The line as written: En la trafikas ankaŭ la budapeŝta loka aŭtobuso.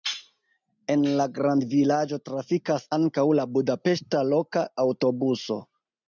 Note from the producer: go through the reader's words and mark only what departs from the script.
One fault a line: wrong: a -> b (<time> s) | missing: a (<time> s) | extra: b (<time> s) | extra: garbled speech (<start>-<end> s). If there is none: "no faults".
extra: grandvilaĝo (1.3 s)